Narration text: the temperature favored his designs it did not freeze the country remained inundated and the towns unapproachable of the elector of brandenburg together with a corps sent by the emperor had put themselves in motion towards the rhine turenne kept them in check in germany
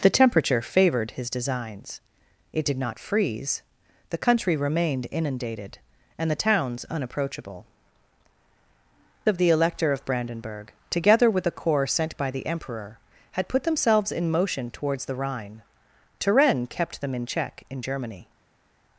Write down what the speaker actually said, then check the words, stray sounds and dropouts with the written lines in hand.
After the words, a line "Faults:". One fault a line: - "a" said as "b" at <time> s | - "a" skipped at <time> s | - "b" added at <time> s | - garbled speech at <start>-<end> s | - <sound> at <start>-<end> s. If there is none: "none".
the temperature favored his designs it did not freeze the country remained inundated and the towns unapproachable of the elector of brandenburg together with a corps sent by the emperor had put themselves in motion towards the rhine turenne kept them in check in germany
Faults:
none